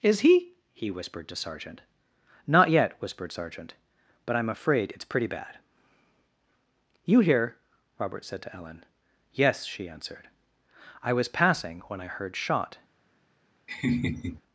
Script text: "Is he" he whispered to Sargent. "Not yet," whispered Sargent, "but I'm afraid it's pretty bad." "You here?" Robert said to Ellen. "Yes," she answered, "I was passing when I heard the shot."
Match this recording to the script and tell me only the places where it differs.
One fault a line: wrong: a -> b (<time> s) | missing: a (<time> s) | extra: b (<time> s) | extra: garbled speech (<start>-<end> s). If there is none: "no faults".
missing: the (12.4 s)